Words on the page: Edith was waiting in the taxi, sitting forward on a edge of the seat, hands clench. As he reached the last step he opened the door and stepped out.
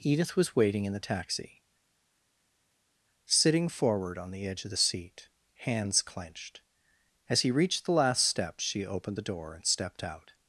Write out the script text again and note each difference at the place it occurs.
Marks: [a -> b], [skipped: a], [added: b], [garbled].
Edith was waiting in the taxi, sitting forward on [a -> the] edge of the seat, hands [clench. -> clenched] As he reached the last step [he -> she] opened the door and stepped out.